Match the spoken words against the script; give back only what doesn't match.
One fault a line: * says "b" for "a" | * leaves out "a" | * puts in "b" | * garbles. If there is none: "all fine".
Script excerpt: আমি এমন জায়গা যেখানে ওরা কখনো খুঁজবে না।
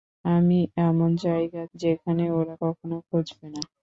all fine